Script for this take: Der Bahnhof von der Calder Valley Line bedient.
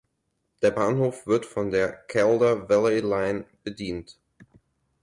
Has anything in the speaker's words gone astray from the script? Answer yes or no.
yes